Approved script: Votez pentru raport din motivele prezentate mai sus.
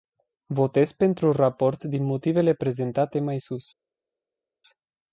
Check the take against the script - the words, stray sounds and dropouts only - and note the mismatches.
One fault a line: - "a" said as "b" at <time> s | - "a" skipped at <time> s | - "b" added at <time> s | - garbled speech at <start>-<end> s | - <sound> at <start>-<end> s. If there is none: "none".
none